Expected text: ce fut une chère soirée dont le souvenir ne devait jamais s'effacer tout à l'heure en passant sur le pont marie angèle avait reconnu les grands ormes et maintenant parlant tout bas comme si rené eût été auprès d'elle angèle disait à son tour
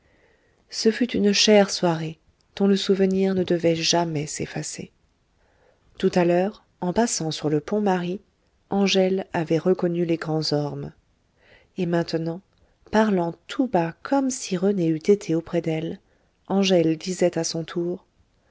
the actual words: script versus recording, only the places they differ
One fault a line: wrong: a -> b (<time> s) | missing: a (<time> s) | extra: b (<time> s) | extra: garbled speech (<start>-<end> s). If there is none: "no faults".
no faults